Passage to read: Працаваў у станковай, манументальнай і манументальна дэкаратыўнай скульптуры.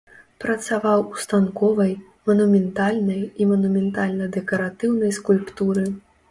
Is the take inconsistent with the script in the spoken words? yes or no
no